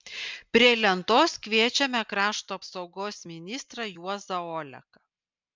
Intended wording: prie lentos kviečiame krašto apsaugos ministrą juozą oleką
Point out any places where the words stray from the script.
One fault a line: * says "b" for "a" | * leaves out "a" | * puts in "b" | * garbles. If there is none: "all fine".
all fine